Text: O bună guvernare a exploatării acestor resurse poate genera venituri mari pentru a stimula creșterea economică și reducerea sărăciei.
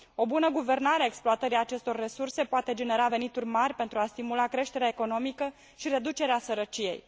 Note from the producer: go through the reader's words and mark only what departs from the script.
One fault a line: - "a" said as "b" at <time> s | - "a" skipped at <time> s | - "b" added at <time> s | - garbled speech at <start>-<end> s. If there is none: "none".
none